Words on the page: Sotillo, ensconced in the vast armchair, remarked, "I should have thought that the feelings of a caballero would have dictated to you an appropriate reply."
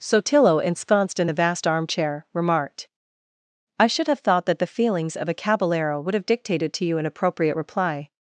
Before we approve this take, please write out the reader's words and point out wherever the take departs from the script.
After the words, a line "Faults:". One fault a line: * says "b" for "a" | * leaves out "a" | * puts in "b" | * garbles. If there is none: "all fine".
Sotillo, ensconced in the vast armchair, remarked, "I should have thought that the feelings of a caballero would have dictated to you an appropriate reply."
Faults:
all fine